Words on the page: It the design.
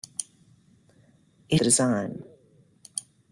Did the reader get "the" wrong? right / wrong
right